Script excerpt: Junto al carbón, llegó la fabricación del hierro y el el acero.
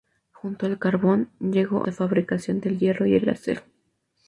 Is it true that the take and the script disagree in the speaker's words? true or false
false